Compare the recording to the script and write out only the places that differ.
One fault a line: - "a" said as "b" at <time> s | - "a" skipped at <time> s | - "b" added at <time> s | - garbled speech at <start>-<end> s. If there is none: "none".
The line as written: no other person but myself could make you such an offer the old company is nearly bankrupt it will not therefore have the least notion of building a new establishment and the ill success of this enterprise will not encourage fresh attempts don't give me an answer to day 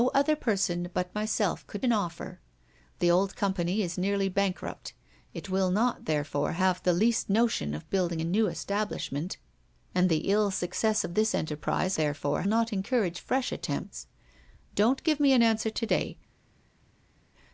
- "make you such" skipped at 1.9 s
- "will" said as "therefore" at 11.9 s